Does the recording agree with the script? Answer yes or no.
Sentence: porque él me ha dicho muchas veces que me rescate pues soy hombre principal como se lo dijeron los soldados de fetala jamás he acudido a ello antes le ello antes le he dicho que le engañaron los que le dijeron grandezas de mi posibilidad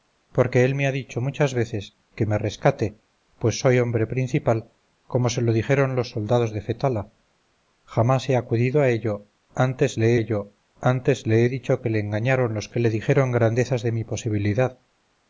yes